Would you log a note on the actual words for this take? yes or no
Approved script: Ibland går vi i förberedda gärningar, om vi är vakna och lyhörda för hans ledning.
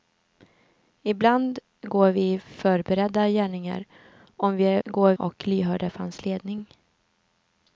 yes